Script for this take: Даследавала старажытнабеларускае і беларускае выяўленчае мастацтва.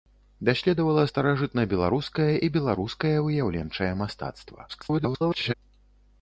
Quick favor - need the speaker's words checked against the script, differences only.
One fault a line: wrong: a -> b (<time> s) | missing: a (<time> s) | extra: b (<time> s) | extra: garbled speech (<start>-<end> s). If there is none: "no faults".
extra: garbled speech (4.7-5.5 s)